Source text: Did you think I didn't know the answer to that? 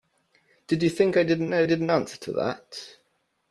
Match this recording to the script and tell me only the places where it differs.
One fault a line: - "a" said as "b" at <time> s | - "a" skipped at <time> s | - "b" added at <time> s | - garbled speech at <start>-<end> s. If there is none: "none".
- "the" said as "didn't" at 1.6 s